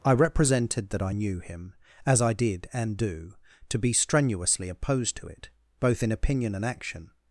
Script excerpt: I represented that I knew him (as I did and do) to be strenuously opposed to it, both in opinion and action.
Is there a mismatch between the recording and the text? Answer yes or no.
no